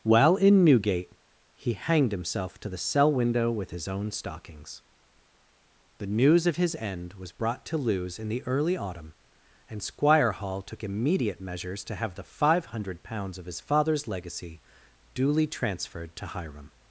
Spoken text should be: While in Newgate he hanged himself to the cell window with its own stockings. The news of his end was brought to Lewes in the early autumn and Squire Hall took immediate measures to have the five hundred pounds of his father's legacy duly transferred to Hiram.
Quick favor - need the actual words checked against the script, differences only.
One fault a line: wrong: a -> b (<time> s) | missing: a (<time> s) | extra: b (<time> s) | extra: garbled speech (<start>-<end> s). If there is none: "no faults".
wrong: its -> his (3.7 s)